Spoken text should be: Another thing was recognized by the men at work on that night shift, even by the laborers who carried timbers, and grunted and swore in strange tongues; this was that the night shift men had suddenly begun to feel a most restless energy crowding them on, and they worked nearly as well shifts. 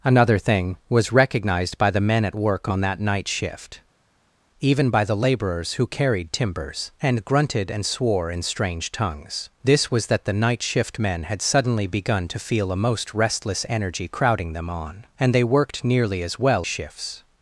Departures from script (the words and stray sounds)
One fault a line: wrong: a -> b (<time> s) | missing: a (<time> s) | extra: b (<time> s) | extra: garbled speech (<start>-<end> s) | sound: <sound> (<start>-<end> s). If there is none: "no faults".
no faults